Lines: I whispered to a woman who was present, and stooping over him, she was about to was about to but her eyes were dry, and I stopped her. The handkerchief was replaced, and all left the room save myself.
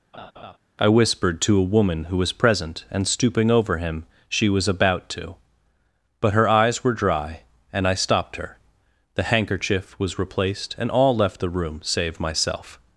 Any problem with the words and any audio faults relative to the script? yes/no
yes